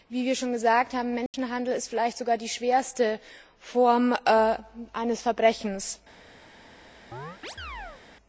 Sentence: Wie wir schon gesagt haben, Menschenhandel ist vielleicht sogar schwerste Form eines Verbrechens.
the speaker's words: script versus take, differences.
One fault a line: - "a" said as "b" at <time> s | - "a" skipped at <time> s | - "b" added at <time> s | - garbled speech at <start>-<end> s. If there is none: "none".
- "die" added at 2.4 s